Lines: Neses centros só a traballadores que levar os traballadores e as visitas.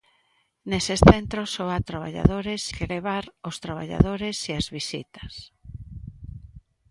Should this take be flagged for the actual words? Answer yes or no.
no